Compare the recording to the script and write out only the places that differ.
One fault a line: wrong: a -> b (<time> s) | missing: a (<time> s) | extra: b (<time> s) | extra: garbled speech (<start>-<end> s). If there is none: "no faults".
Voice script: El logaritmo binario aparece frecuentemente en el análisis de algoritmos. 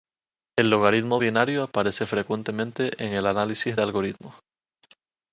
no faults